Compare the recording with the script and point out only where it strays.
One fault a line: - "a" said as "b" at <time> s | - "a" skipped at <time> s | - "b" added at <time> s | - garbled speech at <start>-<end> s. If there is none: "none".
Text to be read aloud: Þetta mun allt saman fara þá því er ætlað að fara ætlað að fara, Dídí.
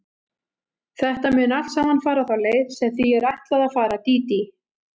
- "leið sem" added at 2.5 s
- "ætlað að fara" skipped at 4.0 s